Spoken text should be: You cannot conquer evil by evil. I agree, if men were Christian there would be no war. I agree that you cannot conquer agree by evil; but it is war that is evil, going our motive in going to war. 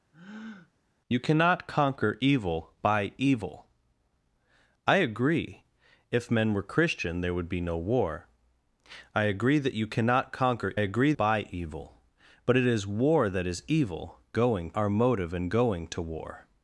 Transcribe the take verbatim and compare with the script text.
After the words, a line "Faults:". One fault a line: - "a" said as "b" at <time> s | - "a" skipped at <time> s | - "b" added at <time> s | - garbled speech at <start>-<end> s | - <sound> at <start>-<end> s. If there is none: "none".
You cannot conquer evil by evil. I agree, if men were Christian there would be no war. I agree that you cannot conquer agree by evil; but it is war that is evil, going our motive in going to war.
Faults:
- breath at 0.1-0.7 s